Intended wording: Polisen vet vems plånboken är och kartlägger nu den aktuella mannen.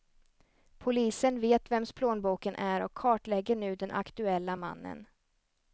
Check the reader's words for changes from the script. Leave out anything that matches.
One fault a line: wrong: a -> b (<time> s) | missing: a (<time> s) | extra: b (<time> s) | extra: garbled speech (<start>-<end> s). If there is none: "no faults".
no faults